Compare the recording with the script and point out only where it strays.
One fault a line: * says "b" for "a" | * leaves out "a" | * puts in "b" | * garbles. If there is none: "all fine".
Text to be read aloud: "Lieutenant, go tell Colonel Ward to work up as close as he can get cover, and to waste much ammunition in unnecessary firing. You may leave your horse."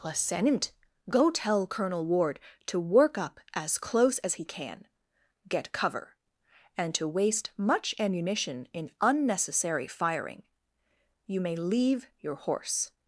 all fine